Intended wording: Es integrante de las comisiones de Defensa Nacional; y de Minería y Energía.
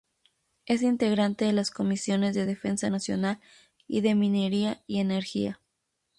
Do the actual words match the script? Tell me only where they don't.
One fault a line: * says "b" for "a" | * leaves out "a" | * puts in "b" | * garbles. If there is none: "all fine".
all fine